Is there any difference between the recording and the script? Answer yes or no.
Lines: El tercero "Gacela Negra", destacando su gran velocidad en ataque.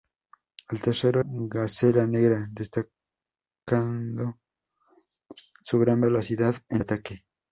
no